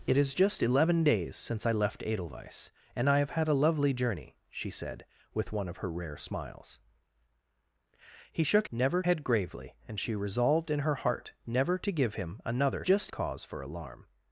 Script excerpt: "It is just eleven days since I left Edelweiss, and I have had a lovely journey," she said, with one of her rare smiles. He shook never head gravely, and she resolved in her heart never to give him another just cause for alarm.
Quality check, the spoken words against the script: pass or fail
pass